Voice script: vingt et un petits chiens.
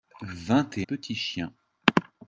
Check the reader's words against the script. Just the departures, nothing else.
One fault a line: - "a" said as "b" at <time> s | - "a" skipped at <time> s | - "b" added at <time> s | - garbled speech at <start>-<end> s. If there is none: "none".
- "un" skipped at 0.9 s